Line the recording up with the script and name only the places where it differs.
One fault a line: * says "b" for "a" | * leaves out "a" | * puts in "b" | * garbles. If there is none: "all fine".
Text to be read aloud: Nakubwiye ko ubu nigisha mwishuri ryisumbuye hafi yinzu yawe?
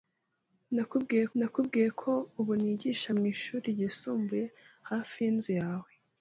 * puts in "nakubwiye"